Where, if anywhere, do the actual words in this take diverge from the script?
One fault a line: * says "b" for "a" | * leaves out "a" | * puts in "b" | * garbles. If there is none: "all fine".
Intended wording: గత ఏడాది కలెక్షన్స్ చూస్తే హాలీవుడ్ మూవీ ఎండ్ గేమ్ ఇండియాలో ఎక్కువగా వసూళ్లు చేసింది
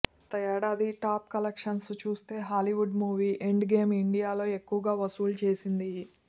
* puts in "టాప్"